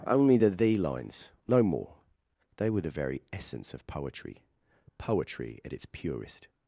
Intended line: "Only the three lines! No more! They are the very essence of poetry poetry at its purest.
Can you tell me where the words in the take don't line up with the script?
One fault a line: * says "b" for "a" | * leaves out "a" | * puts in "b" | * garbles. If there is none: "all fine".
* says "thee" for "three"
* says "were" for "are"